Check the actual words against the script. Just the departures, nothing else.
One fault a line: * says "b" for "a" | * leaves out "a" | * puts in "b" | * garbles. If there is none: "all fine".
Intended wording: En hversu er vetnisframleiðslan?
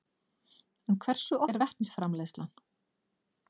all fine